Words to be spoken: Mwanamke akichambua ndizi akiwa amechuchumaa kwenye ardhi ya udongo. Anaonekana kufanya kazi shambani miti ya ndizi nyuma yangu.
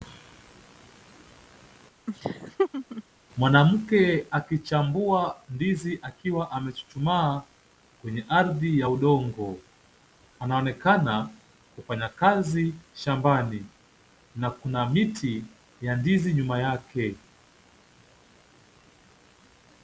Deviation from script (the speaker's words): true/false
true